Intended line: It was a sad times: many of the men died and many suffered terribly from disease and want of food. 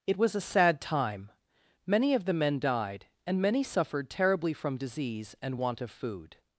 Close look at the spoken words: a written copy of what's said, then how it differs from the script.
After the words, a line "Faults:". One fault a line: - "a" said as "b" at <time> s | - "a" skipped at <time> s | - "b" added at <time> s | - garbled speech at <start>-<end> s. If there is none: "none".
It was a sad time: many of the men died and many suffered terribly from disease and want of food.
Faults:
- "times" said as "time" at 0.8 s